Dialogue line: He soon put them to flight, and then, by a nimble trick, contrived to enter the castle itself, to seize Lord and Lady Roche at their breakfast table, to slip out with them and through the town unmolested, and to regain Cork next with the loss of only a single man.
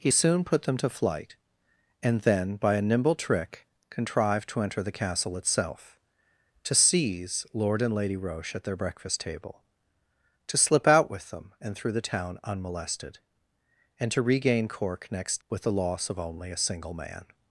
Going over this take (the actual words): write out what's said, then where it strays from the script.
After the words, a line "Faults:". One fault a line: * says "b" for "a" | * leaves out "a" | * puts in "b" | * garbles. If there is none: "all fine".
He soon put them to flight, and then, by a nimble trick, contrived to enter the castle itself, to seize Lord and Lady Roche at their breakfast table, to slip out with them and through the town unmolested, and to regain Cork next with the loss of only a single man.
Faults:
all fine